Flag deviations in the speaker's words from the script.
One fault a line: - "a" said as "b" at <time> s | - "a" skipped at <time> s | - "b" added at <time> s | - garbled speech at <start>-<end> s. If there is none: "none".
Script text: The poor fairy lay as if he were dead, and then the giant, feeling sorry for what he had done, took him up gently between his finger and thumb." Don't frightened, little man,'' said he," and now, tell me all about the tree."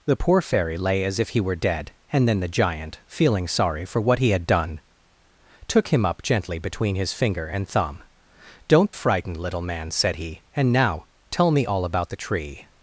none